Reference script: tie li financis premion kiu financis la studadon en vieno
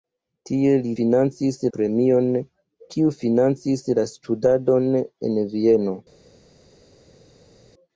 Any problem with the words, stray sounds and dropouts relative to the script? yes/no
no